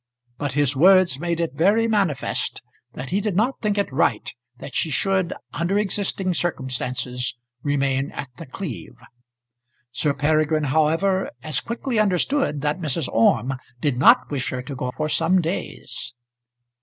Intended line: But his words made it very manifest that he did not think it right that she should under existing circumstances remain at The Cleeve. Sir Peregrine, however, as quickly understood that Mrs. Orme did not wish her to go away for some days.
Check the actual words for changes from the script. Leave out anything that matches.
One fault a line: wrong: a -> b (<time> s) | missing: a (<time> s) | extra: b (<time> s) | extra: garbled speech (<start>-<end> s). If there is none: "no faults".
missing: away (14.9 s)